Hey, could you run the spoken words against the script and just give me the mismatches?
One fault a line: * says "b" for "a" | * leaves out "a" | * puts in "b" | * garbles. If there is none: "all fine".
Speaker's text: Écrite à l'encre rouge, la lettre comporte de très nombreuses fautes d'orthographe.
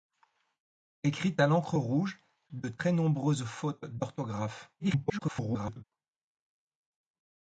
* leaves out "la lettre comporte"
* garbles